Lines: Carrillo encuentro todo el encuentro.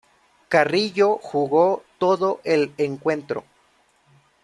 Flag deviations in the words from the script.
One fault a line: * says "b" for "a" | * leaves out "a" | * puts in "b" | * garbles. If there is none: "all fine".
* says "jugó" for "encuentro"